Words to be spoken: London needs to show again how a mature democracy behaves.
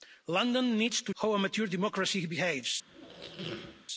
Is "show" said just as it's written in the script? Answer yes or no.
no